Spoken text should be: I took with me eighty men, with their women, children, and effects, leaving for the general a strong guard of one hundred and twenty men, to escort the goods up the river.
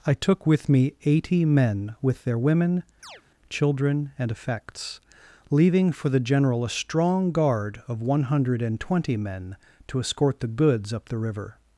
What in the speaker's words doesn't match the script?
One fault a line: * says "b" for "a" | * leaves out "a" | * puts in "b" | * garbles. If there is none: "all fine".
all fine